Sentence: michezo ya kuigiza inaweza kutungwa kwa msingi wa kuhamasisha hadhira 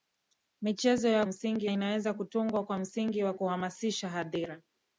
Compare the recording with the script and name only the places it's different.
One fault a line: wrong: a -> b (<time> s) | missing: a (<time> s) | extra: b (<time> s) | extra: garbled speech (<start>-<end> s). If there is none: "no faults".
wrong: kuigiza -> msingi (1.2 s)